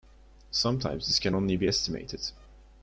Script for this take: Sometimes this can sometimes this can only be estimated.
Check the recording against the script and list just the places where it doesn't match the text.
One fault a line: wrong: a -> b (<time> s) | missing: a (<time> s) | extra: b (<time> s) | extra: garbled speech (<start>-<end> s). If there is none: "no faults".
missing: sometimes this can (1.4 s)